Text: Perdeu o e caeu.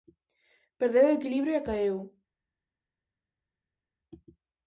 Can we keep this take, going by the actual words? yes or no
no